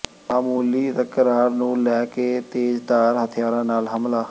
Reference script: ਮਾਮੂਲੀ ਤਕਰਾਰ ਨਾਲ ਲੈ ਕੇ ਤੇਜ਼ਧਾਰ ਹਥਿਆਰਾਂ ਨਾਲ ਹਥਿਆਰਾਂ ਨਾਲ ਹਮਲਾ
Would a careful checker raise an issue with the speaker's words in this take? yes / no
yes